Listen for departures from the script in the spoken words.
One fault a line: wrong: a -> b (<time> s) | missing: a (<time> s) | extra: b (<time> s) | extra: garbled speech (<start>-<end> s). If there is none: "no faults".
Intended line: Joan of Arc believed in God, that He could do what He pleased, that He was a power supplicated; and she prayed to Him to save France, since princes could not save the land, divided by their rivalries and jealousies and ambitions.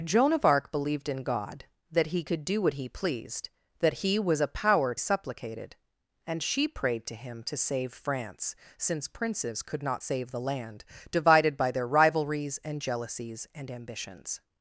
no faults